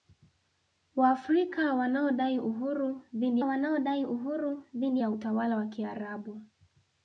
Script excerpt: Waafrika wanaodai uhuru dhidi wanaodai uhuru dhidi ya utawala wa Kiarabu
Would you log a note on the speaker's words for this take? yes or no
no